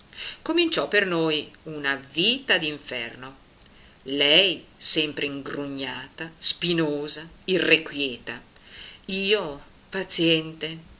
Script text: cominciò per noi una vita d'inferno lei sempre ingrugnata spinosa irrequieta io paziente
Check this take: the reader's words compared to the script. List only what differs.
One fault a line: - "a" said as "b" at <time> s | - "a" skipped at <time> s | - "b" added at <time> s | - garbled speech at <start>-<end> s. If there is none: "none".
none